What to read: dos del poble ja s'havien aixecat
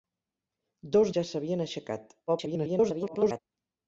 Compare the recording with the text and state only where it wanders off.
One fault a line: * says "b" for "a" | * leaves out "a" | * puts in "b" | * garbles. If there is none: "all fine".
* leaves out "del poble"
* garbles